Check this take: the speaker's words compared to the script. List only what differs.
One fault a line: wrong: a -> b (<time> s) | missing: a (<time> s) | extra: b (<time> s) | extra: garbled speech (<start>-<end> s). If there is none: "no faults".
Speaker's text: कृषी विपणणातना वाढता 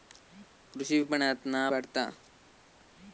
no faults